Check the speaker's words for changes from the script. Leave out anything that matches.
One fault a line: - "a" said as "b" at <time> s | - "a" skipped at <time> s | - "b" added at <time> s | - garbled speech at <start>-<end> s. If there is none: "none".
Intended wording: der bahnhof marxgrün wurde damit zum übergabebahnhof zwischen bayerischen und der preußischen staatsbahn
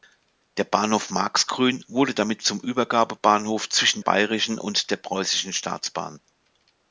none